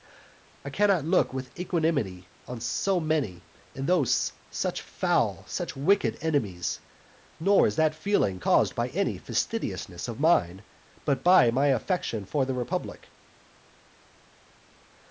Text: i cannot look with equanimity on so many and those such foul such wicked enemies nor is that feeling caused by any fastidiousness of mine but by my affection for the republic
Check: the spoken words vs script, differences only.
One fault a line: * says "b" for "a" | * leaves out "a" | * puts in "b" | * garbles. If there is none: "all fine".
all fine